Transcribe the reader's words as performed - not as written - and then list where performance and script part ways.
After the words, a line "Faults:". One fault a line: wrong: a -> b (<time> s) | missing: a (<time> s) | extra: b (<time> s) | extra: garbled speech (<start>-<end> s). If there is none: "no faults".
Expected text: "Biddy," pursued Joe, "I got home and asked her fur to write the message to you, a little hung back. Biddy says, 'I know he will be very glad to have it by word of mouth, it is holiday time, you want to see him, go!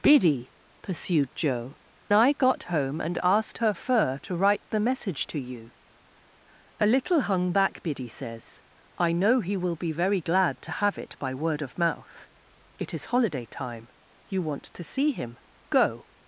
"Biddy," pursued Joe, "I got home and asked her fur to write the message to you, a little hung back. Biddy says, 'I know he will be very glad to have it by word of mouth, it is holiday time, you want to see him, go!
Faults:
no faults